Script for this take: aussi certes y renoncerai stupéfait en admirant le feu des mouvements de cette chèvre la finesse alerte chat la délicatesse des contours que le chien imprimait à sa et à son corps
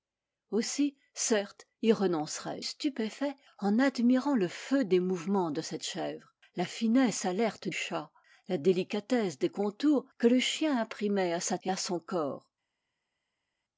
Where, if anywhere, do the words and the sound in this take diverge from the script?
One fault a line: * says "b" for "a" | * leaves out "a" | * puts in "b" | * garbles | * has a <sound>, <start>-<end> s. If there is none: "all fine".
all fine